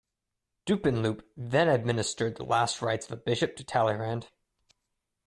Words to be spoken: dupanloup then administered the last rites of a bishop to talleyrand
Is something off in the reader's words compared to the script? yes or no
no